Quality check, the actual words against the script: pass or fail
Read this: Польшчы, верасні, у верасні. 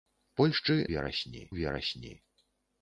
pass